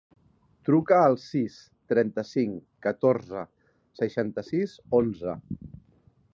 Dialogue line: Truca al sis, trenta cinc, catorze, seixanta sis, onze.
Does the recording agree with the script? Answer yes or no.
yes